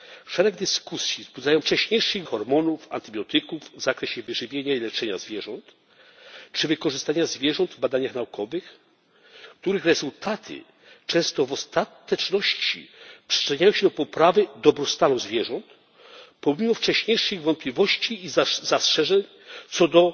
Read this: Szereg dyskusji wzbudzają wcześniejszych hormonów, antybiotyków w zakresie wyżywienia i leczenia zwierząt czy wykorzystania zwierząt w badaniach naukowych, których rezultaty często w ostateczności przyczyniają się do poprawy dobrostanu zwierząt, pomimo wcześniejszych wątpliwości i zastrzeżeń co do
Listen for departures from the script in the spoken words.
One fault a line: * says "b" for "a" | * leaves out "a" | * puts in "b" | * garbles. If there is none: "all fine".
all fine